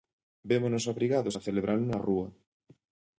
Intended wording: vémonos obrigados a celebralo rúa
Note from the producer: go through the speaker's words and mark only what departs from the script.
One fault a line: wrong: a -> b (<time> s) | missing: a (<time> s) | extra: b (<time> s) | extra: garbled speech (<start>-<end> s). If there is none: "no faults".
extra: na (1.9 s)